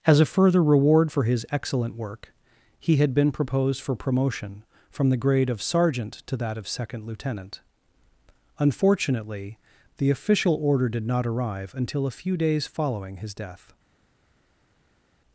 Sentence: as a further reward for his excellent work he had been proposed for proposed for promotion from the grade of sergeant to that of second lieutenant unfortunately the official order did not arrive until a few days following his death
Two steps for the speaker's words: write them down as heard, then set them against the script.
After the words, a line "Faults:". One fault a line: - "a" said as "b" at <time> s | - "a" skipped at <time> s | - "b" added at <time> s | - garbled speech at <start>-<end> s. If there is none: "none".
as a further reward for his excellent work he had been proposed for promotion from the grade of sergeant to that of second lieutenant unfortunately the official order did not arrive until a few days following his death
Faults:
- "proposed for" skipped at 4.0 s